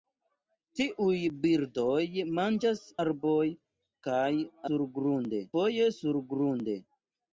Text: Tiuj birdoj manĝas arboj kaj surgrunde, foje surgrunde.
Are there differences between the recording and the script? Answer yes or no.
no